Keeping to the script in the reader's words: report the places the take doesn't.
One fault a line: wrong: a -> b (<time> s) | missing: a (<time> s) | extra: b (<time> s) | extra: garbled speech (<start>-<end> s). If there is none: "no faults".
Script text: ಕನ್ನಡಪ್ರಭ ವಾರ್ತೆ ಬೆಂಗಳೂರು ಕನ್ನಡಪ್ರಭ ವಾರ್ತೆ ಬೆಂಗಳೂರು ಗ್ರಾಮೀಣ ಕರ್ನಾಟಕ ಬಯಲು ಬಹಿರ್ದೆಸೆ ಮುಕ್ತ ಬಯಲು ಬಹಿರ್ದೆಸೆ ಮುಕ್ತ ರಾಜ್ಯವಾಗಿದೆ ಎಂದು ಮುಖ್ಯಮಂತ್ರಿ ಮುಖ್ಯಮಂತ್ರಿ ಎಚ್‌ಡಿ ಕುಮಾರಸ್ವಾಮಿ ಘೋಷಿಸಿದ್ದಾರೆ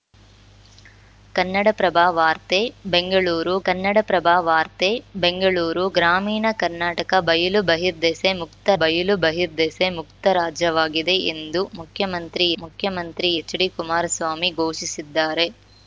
no faults